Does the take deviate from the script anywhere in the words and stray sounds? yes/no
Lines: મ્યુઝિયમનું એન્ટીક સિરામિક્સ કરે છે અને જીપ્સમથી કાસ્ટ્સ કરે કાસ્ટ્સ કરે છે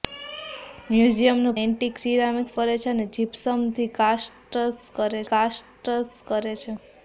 no